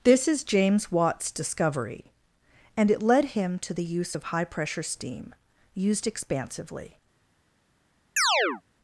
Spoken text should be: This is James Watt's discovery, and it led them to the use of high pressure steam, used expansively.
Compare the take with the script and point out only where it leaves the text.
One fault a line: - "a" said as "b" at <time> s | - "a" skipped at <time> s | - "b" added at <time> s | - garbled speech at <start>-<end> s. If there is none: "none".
- "them" said as "him" at 3.4 s